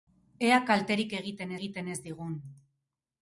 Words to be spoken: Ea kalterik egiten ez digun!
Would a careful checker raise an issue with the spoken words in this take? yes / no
yes